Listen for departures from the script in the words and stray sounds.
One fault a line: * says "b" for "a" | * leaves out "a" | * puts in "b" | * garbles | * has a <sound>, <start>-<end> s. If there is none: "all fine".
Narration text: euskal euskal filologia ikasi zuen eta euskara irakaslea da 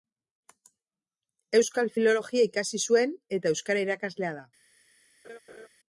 * leaves out "euskal"
* has a laugh, 5.2-5.7 s